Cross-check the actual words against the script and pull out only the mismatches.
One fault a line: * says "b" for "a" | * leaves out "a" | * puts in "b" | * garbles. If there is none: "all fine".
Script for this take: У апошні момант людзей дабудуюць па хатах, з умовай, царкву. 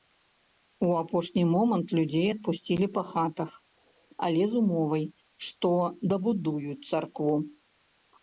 * says "адпусцілі" for "дабудуюць"
* puts in "але"
* puts in "што дабудуюць"